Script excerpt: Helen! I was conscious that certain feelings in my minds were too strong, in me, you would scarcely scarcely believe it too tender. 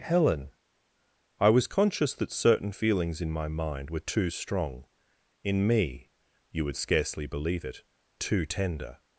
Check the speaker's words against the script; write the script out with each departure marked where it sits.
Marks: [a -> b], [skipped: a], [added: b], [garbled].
Helen! I was conscious that certain feelings in my [minds -> mind] were too strong, in me, you would scarcely [skipped: scarcely] believe it too tender.